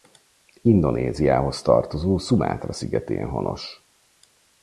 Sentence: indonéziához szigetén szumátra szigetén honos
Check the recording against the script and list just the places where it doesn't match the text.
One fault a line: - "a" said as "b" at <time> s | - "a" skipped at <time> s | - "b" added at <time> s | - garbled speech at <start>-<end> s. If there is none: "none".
- "szigetén" said as "tartozó" at 1.6 s